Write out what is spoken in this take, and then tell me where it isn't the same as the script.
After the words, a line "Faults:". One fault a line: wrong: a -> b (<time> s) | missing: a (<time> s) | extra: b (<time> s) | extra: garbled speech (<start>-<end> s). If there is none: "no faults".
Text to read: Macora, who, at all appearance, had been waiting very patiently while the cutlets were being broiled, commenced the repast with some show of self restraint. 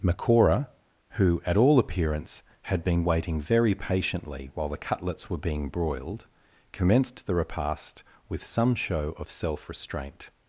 Macora, who, at all appearance, had been waiting very patiently while the cutlets were being broiled, commenced the repast with some show of self restraint.
Faults:
no faults